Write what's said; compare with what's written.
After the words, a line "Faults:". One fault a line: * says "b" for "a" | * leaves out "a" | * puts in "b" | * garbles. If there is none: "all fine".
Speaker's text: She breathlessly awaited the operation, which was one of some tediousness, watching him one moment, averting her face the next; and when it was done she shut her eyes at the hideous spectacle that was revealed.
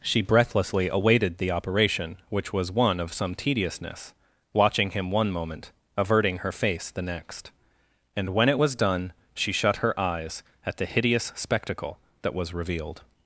She breathlessly awaited the operation, which was one of some tediousness, watching him one moment, averting her face the next; and when it was done she shut her eyes at the hideous spectacle that was revealed.
Faults:
all fine